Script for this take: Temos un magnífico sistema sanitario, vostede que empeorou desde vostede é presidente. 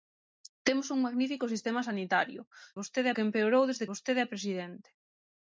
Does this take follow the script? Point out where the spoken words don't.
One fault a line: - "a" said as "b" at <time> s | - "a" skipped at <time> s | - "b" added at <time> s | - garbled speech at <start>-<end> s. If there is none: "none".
none